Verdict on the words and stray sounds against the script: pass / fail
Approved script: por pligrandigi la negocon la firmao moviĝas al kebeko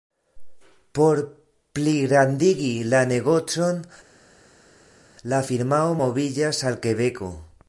pass